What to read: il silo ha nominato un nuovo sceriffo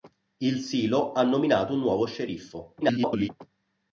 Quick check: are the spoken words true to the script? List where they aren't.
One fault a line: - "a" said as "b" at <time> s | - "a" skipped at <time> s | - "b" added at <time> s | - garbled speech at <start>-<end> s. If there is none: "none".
- garbled speech at 2.8-3.3 s